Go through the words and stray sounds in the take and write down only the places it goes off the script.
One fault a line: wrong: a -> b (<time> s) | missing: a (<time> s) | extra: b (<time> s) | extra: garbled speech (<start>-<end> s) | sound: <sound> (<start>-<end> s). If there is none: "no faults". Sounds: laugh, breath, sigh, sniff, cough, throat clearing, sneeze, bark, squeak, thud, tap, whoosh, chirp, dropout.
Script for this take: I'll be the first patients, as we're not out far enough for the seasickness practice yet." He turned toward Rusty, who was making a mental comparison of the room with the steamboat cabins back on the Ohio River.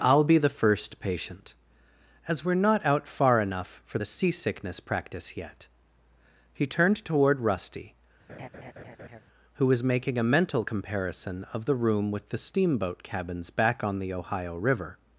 wrong: patients -> patient (1.0 s)
sound: laugh (8.3-9.2 s)